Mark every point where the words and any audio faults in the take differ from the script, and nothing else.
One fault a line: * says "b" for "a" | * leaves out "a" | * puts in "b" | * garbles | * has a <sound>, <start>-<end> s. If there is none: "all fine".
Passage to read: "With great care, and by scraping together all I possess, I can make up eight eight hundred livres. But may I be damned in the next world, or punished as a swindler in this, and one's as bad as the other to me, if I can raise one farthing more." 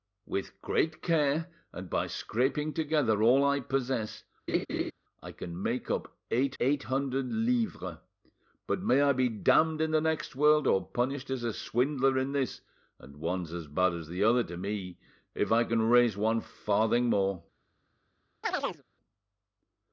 * has a laugh, 4.5-4.9 s
* has a chirp, 18.4-18.8 s